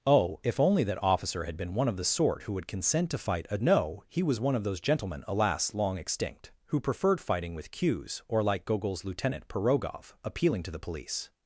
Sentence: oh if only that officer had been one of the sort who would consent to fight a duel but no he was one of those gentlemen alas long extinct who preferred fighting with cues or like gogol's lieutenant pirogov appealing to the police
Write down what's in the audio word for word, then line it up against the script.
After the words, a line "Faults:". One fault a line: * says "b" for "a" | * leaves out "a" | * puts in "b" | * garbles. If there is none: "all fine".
oh if only that officer had been one of the sort who would consent to fight a no he was one of those gentlemen alas long extinct who preferred fighting with cues or like gogol's lieutenant pirogov appealing to the police
Faults:
* leaves out "duel but"